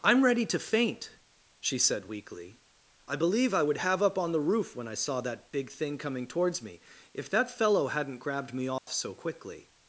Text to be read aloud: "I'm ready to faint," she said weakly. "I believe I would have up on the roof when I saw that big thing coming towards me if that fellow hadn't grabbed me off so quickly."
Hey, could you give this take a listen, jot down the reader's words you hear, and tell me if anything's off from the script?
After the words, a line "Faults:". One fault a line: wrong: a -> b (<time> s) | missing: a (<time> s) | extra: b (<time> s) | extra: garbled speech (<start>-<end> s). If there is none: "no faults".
"I'm ready to faint," she said weakly. "I believe I would have up on the roof when I saw that big thing coming towards me if that fellow hadn't grabbed me off so quickly."
Faults:
no faults